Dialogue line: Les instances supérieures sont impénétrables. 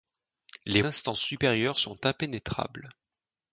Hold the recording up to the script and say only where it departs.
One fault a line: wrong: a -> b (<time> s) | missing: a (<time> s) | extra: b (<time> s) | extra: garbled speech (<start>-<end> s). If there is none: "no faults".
no faults